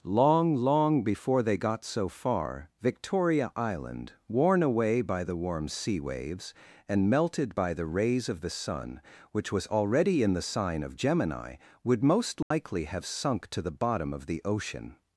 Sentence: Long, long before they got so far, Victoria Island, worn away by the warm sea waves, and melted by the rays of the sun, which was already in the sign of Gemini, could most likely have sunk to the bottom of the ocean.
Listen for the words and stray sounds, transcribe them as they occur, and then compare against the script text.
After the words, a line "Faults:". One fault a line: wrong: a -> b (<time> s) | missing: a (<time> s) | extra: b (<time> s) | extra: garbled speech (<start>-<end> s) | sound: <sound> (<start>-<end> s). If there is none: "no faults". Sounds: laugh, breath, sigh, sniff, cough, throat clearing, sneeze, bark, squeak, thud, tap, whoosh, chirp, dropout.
Long, long before they got so far, Victoria Island, worn away by the warm sea waves, and melted by the rays of the sun, which was already in the sign of Gemini, would most likely have sunk to the bottom of the ocean.
Faults:
wrong: could -> would (11.8 s)
sound: dropout (12.4-12.5 s)